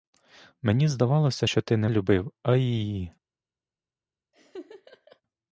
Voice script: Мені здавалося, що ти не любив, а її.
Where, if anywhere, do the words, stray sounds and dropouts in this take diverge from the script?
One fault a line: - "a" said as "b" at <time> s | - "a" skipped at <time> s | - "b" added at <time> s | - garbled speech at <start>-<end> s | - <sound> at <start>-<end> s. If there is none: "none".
- laugh at 4.3-5.2 s